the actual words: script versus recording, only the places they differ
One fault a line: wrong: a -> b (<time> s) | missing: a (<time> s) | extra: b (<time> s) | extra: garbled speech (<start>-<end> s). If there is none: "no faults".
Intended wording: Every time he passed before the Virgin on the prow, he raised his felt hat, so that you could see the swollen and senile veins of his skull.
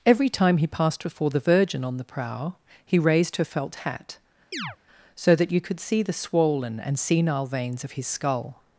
wrong: his -> her (3.4 s)